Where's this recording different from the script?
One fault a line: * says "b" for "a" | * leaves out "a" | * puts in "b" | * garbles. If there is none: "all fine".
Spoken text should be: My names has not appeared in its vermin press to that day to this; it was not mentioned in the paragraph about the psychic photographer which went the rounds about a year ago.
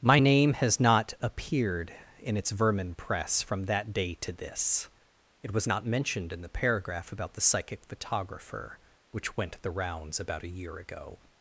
* says "name" for "names"
* says "from" for "to"